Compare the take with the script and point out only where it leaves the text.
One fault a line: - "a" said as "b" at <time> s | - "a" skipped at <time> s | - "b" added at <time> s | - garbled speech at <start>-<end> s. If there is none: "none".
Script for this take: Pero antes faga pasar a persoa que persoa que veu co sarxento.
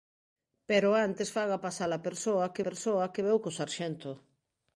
none